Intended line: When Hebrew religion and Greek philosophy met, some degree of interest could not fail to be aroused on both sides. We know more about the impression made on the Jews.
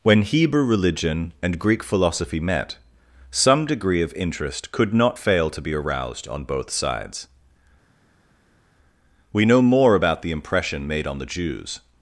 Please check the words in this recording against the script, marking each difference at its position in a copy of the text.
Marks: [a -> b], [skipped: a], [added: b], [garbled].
When Hebrew religion and Greek philosophy met, some degree of interest could not fail to be aroused on both sides. We know more about the impression made on the Jews.